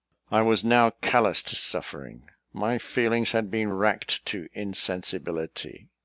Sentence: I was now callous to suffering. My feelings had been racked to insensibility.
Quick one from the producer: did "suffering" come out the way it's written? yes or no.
yes